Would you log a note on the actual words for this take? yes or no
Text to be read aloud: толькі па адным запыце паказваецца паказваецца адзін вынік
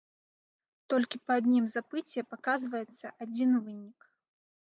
yes